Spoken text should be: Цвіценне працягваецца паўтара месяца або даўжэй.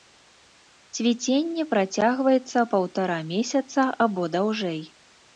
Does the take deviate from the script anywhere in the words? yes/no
no